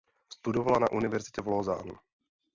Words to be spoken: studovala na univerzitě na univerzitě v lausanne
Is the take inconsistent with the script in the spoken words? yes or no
yes